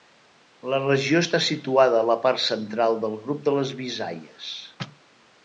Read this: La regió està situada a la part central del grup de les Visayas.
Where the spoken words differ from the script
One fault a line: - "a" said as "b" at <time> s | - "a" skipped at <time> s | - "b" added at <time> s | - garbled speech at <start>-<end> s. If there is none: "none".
none